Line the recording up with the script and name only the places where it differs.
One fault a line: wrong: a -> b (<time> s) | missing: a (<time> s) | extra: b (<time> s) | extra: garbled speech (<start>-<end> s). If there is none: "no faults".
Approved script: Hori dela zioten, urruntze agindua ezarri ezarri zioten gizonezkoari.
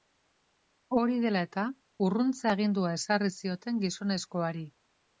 wrong: zioten -> eta (1.5 s)
missing: ezarri (3.3 s)